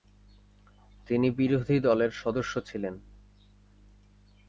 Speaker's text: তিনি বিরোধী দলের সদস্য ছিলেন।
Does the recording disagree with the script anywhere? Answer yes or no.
no